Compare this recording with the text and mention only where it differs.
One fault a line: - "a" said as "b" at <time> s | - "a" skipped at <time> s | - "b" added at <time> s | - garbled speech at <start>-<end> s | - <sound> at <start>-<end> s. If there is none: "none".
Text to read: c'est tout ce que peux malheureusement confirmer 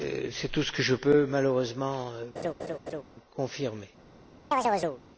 - "je" added at 0.8 s
- laugh at 2.4-3.0 s
- chirp at 4.5-5.0 s